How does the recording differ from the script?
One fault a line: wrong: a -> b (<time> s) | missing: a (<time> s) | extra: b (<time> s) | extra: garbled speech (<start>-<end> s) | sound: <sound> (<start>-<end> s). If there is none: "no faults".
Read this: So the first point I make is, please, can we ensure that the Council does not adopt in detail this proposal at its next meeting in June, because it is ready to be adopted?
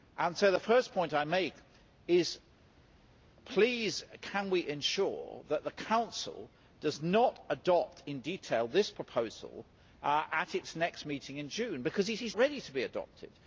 no faults